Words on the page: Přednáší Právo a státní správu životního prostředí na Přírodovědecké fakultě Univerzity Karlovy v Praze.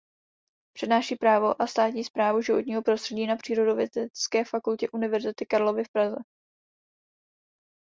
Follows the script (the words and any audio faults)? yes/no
yes